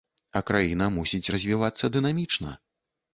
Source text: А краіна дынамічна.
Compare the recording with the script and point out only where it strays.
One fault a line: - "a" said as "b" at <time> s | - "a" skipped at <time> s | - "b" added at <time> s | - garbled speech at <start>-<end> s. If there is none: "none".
- "мусіць развівацца" added at 0.9 s